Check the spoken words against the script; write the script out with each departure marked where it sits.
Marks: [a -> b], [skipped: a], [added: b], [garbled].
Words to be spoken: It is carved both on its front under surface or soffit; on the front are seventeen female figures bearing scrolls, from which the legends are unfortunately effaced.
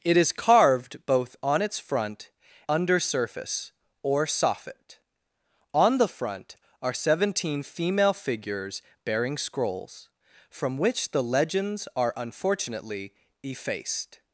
It is carved both on its front under surface or soffit; on the front are seventeen female figures bearing scrolls, from which the legends are unfortunately effaced.